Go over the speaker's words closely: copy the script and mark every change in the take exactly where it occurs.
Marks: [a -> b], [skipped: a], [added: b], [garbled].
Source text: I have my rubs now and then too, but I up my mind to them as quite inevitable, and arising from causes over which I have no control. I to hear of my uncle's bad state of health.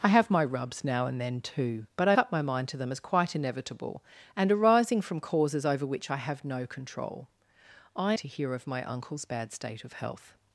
I have my rubs now and then too, but I up my mind to them as quite inevitable, and arising from causes over which I have no control. I to hear of my uncle's bad state of health.